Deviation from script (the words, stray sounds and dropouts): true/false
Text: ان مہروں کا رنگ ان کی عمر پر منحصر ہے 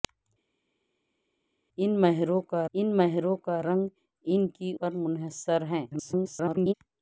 true